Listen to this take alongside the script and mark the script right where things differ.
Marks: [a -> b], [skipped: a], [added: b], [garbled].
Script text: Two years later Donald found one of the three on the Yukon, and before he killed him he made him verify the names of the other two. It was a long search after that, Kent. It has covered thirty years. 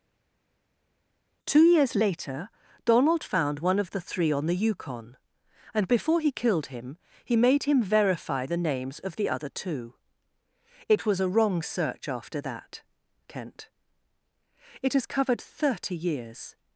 Two years later Donald found one of the three on the Yukon, and before he killed him he made him verify the names of the other two. It was a [long -> wrong] search after that, Kent. It has covered thirty years.